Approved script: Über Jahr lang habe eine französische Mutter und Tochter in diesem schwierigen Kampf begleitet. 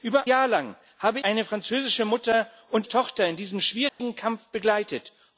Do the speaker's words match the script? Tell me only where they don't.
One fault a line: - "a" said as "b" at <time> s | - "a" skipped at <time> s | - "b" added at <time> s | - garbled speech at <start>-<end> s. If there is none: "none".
none